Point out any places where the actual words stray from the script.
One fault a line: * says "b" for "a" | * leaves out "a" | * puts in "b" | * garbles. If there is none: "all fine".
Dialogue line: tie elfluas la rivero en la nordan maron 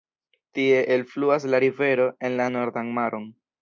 all fine